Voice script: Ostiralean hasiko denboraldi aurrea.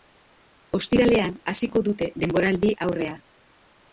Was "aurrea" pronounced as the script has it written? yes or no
yes